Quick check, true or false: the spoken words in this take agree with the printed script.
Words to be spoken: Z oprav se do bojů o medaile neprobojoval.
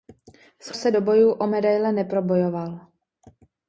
false